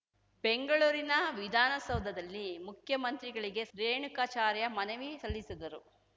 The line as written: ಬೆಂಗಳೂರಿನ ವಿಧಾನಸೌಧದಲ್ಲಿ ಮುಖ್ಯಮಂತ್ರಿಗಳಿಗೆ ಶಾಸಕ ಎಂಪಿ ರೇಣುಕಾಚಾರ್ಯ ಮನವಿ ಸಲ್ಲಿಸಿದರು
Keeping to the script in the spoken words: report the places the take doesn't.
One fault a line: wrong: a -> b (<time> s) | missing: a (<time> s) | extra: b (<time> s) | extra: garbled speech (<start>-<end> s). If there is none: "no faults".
missing: ಶಾಸಕ ಎಂಪಿ (3.6 s)